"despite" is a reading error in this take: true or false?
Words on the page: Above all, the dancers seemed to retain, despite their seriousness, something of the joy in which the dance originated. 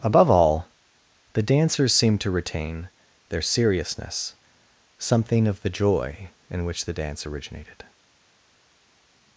true